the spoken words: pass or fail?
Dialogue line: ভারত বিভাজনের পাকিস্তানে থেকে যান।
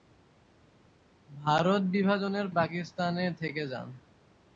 pass